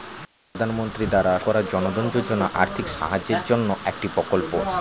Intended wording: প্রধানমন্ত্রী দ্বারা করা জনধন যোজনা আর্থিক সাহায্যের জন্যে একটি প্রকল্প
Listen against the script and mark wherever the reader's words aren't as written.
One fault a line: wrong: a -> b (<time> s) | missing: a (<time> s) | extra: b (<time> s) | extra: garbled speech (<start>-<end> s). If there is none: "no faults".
no faults